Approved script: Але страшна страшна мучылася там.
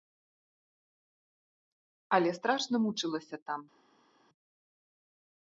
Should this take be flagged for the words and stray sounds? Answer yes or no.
yes